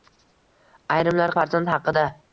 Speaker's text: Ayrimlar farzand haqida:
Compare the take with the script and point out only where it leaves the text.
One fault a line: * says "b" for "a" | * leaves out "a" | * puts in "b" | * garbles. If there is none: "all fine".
all fine